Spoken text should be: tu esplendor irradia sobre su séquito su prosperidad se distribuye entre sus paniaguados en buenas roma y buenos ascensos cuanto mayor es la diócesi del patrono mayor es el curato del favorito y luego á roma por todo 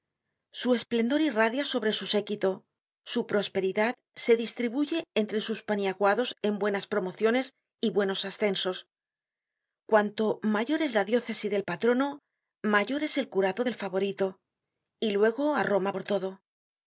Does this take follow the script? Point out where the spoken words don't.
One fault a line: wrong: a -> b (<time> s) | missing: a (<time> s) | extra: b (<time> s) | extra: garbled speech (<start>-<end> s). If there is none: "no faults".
wrong: tu -> su (0.5 s)
wrong: roma -> promociones (6.9 s)